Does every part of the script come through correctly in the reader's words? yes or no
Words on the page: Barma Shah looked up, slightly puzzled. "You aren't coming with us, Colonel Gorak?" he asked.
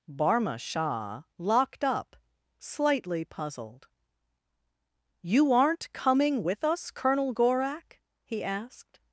no